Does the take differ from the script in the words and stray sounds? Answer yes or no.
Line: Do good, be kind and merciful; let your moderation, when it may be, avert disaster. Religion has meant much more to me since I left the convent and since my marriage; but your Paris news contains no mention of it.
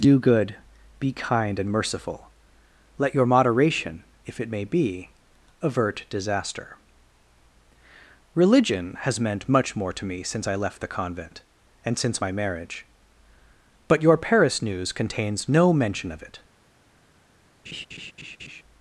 yes